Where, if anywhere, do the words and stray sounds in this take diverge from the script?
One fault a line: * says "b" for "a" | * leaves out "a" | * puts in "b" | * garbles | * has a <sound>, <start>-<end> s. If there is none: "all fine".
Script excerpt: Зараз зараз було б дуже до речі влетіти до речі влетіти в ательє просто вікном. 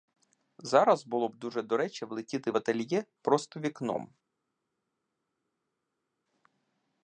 * leaves out "зараз"
* leaves out "до речі влетіти"